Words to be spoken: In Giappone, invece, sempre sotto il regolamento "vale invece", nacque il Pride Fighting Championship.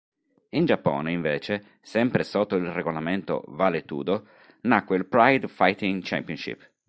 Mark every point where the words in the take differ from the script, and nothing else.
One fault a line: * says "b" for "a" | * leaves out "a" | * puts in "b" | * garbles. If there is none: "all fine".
* says "tudo" for "invece"